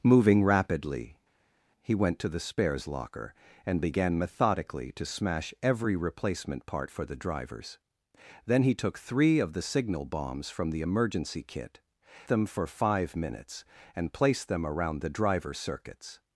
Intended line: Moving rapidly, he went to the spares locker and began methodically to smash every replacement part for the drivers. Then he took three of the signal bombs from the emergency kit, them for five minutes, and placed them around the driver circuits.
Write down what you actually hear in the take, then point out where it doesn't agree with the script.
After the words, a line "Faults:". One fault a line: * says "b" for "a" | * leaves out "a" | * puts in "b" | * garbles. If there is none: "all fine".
Moving rapidly, he went to the spares locker and began methodically to smash every replacement part for the drivers. Then he took three of the signal bombs from the emergency kit, them for five minutes, and placed them around the driver circuits.
Faults:
all fine